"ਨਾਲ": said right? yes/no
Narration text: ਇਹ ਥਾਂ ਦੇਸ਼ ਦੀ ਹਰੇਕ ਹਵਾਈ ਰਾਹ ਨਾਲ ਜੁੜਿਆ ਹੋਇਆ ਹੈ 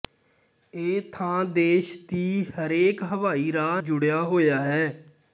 no